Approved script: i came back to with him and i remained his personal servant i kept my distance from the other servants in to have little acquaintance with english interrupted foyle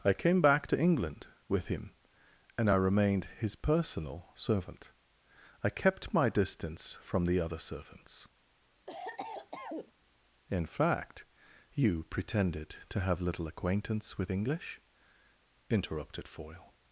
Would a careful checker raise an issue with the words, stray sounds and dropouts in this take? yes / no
yes